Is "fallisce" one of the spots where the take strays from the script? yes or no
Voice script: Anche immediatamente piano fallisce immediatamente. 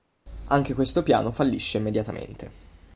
no